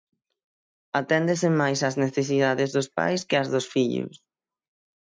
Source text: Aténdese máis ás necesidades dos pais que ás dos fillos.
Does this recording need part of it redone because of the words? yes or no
no